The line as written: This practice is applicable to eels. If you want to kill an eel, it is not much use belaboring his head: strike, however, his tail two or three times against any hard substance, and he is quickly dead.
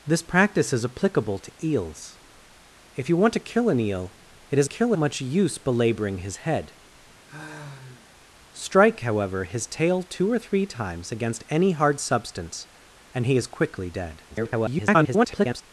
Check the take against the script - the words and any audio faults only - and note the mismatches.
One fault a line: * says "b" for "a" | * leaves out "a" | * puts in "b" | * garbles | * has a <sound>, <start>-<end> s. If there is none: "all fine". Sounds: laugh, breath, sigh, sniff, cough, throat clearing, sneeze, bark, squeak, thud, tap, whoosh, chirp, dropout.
* says "kill" for "not"
* has a sigh, 7.3-8.1 s
* garbles